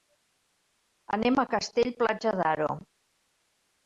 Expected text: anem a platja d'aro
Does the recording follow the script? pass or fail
fail